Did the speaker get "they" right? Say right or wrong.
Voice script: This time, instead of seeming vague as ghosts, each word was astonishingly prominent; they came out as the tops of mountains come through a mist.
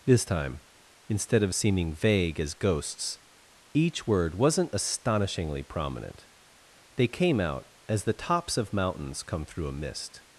right